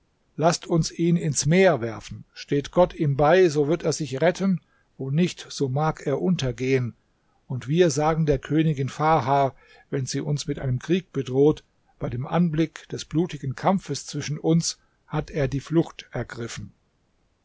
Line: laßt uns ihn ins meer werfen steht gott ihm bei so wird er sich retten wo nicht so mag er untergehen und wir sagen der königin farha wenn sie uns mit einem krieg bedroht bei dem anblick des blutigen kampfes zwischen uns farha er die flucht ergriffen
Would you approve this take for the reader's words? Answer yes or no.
no